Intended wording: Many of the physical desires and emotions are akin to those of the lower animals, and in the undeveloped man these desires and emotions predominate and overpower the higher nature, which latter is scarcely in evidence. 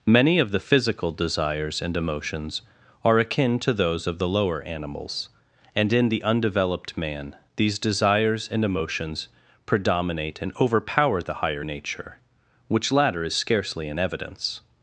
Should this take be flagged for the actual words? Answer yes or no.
no